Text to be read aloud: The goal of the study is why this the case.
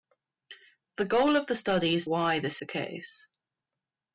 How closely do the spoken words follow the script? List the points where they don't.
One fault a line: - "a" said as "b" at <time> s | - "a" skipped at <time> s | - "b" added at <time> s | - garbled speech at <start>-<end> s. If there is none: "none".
none